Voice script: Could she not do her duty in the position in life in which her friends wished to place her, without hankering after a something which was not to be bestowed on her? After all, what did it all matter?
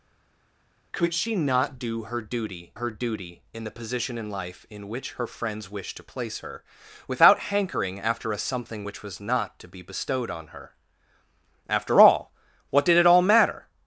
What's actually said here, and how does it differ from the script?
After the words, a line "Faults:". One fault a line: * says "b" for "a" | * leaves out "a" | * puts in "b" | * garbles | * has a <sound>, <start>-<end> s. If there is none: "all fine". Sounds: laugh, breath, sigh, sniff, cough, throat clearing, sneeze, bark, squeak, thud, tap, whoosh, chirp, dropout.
Could she not do her duty her duty in the position in life in which her friends wished to place her, without hankering after a something which was not to be bestowed on her? After all, what did it all matter?
Faults:
* puts in "her duty"